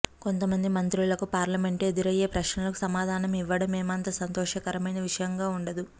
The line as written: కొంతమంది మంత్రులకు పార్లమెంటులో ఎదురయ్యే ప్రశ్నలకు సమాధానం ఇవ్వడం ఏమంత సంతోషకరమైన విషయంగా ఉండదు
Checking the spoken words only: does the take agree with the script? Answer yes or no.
yes